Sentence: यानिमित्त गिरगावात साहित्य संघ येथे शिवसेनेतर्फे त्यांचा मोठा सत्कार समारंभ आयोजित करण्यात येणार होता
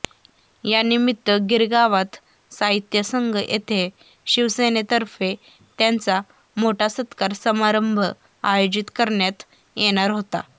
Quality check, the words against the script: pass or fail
pass